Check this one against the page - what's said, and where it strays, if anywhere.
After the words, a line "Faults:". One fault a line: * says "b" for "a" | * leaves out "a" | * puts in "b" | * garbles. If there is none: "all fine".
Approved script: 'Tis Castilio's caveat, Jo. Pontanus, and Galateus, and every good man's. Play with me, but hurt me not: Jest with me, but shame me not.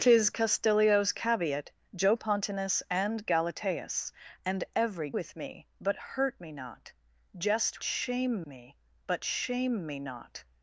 'Tis Castilio's caveat, Jo. Pontanus, and Galateus, and every with me, but hurt me not: Jest shame me, but shame me not.
Faults:
* leaves out "good man's Play"
* says "shame" for "with"